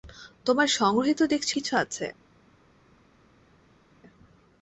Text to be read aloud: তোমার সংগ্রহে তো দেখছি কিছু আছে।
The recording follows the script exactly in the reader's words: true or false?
true